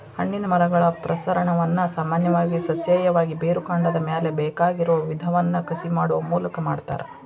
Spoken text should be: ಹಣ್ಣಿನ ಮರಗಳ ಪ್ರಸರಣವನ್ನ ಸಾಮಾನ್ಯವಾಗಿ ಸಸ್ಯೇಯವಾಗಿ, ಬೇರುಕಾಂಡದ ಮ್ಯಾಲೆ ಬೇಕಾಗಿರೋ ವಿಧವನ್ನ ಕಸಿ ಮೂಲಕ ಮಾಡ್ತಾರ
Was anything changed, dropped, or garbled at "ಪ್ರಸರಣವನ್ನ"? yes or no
no